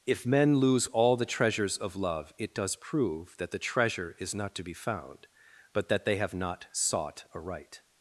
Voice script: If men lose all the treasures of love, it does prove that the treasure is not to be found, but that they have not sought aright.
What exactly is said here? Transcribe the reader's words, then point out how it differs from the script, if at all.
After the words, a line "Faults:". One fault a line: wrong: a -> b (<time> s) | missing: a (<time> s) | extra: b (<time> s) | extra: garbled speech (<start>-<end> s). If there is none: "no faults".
If men lose all the treasures of love, it does prove that the treasure is not to be found, but that they have not sought aright.
Faults:
no faults